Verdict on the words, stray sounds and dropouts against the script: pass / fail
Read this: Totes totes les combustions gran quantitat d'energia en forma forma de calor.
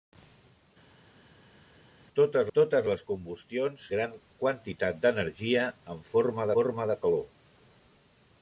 pass